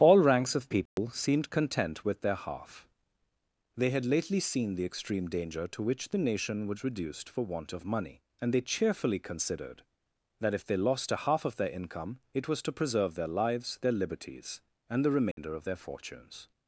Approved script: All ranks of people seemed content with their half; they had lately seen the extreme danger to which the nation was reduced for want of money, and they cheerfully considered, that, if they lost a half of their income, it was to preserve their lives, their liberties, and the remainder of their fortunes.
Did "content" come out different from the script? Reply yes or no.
no